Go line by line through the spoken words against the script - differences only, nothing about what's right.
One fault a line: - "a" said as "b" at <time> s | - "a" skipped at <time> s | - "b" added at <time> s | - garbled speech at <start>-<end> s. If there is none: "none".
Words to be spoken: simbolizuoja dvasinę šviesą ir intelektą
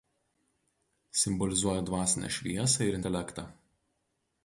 none